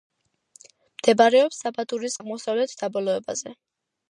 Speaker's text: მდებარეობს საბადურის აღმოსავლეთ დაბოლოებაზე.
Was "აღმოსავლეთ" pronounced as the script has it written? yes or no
yes